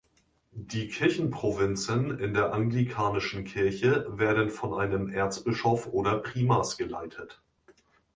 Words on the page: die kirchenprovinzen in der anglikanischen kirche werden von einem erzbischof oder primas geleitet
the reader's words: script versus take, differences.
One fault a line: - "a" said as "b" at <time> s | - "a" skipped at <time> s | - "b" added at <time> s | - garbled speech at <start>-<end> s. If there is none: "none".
none